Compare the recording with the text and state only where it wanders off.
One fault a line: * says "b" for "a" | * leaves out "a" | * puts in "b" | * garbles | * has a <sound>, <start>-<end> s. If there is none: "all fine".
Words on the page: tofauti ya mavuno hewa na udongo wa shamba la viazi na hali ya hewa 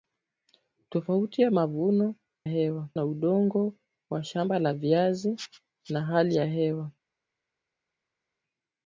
all fine